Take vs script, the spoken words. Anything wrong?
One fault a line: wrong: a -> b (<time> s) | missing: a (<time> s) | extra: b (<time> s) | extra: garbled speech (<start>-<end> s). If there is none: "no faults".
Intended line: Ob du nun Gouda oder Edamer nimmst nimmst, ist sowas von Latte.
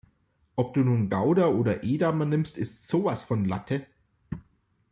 missing: nimmst (2.6 s)